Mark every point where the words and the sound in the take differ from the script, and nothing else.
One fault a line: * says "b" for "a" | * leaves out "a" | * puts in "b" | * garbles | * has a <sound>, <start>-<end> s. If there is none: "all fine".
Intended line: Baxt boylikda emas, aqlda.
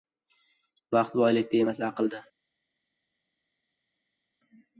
all fine